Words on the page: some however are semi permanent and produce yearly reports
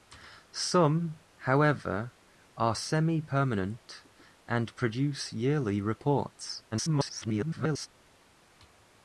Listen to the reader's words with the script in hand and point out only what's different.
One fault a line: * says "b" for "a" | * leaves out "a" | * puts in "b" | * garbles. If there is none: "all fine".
* garbles